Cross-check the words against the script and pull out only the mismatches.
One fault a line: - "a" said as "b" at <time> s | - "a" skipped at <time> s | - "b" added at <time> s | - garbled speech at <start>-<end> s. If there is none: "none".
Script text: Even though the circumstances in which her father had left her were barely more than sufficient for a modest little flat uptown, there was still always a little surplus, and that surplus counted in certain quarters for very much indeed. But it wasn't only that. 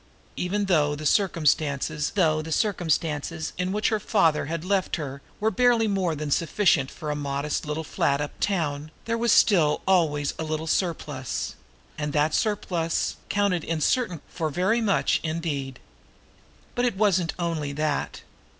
- "though the circumstances" added at 2.1 s
- "quarters" skipped at 14.2 s